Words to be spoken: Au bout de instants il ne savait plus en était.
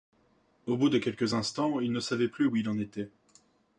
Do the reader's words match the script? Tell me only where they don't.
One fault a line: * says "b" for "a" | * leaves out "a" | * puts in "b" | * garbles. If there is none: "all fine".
* puts in "quelques"
* puts in "où il"